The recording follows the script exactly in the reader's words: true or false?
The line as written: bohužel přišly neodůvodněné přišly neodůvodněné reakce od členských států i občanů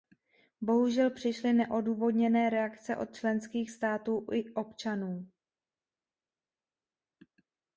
false